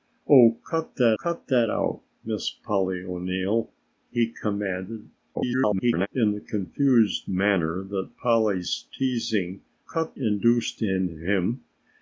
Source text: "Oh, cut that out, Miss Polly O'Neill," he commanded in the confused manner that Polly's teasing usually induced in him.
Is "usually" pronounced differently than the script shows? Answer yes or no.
yes